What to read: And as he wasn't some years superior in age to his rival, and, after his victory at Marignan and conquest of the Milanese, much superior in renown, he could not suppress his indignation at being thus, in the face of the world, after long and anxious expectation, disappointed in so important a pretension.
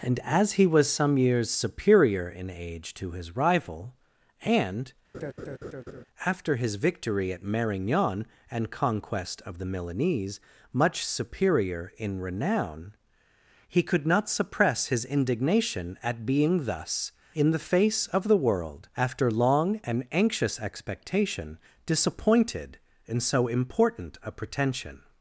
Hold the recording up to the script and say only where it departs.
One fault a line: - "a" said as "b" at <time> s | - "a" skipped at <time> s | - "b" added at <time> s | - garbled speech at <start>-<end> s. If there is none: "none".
- "wasn't" said as "was" at 0.7 s